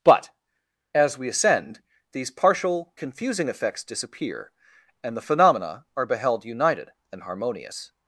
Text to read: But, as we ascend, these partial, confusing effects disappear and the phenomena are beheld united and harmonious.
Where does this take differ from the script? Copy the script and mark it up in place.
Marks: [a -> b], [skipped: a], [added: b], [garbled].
But, as we ascend, these partial, confusing effects disappear and the phenomena are beheld united and harmonious.